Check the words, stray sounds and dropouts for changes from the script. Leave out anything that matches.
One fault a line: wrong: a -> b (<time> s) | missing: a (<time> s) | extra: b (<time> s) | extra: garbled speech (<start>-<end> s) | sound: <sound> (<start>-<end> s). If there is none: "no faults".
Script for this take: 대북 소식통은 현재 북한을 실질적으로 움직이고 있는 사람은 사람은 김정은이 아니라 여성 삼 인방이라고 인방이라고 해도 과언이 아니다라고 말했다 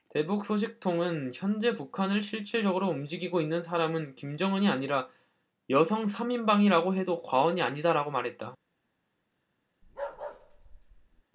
missing: 사람은 (4.2 s)
missing: 인방이라고 (7.0 s)
sound: bark (9.8-11.2 s)